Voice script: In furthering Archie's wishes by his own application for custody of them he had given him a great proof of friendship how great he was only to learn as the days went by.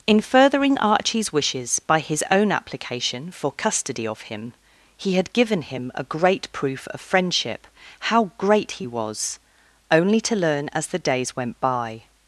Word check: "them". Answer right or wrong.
wrong